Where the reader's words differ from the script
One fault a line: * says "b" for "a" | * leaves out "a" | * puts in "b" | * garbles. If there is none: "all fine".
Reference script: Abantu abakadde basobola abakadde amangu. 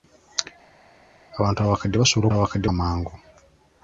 all fine